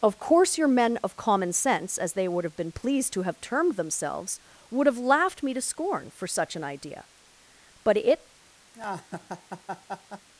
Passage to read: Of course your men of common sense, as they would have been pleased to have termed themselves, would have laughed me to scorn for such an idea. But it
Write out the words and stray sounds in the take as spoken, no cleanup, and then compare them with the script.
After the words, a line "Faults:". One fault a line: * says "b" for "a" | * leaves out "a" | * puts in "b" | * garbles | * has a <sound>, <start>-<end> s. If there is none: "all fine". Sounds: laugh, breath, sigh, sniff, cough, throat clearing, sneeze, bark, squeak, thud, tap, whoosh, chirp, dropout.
Of course your men of common sense, as they would have been pleased to have termed themselves, would have laughed me to scorn for such an idea. But it
Faults:
* has a laugh, 8.7-10.3 s